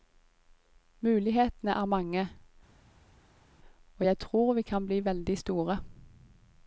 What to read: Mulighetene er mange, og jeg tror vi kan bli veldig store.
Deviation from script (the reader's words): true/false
false